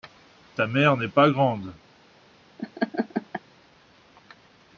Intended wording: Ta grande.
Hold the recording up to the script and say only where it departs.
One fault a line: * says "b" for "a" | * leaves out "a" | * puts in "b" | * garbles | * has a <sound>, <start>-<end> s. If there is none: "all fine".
* puts in "mère n'est pas"
* has a laugh, 2.6-3.4 s